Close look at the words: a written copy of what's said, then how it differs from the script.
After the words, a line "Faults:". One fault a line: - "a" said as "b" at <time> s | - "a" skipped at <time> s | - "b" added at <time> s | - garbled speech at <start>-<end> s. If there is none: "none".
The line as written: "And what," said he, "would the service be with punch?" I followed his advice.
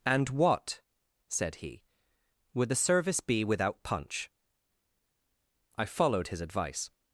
"And what," said he, "would the service be without punch?" I followed his advice.
Faults:
- "with" said as "without" at 3.4 s